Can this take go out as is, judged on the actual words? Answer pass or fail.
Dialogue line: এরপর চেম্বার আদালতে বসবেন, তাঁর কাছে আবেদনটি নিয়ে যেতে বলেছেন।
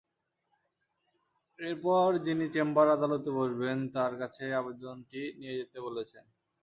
fail